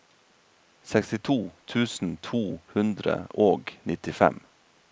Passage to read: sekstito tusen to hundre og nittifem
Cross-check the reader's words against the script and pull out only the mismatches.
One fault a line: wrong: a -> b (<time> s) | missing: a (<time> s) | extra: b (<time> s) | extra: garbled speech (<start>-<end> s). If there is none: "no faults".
no faults